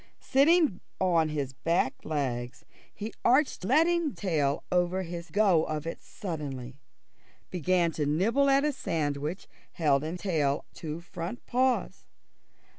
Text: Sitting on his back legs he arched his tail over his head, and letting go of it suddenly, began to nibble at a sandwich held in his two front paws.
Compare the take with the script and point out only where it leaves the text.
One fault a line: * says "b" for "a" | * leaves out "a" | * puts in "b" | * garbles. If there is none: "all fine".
* says "letting" for "his"
* leaves out "head and letting"
* says "tail" for "his"